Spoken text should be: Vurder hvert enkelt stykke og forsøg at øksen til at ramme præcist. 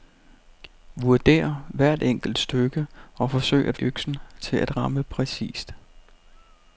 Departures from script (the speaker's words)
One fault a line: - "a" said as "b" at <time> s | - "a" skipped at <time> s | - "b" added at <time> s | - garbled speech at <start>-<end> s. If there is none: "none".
none